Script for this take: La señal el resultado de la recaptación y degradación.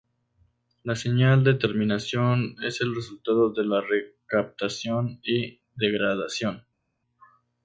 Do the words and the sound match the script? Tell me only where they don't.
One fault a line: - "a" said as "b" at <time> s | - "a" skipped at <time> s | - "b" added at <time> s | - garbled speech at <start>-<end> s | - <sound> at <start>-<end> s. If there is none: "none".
- "de terminación es" added at 1.4 s